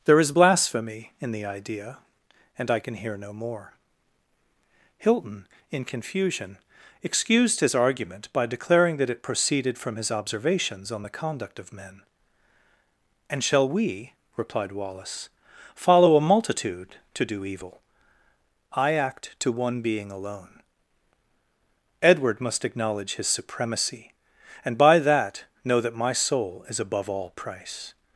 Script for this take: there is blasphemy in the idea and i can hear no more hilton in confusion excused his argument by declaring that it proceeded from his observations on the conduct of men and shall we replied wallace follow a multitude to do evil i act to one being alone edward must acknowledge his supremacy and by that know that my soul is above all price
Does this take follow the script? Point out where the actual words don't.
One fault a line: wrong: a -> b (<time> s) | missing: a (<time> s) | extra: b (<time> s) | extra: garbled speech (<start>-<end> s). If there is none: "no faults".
no faults